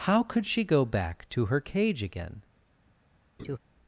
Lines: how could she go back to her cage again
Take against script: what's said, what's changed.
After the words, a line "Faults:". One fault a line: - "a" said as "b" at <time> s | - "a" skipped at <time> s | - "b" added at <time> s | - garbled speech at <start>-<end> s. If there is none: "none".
how could she go back to her cage again
Faults:
none